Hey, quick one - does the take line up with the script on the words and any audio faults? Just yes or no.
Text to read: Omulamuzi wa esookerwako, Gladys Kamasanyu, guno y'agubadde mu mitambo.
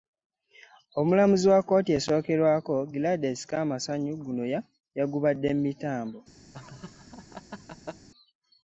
no